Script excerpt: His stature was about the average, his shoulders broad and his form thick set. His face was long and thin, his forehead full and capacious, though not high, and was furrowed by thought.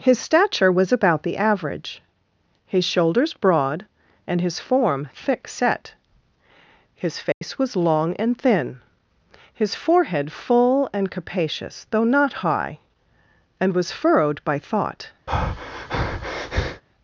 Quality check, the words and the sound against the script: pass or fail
fail